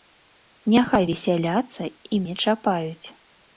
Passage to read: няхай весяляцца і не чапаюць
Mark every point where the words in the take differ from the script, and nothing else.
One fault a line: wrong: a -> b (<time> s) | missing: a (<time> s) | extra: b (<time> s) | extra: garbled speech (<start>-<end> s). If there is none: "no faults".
no faults